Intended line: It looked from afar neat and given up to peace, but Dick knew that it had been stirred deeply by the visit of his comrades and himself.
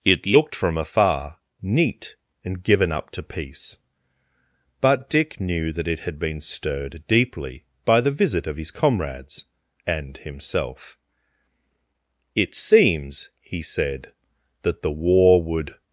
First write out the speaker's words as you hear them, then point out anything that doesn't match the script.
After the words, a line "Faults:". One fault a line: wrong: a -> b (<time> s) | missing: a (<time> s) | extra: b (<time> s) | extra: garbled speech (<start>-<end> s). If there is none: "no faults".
It looked from afar neat and given up to peace, but Dick knew that it had been stirred deeply by the visit of his comrades and himself. "It seems," he said, "that the war would
Faults:
extra: It seems he said that the war would (12.3 s)